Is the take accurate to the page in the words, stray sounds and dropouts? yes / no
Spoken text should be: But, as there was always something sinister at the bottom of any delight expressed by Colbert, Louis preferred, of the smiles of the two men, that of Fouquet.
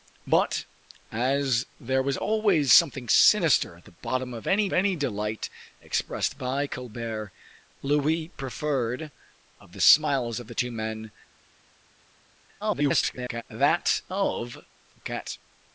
no